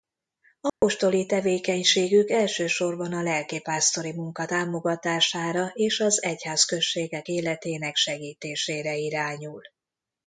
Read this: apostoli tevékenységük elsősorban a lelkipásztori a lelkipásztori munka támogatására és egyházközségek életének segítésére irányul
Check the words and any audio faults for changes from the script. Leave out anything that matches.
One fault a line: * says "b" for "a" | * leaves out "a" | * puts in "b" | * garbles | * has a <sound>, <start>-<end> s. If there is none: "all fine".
* has a dropout, 0.7-0.8 s
* leaves out "a lelkipásztori"
* puts in "az"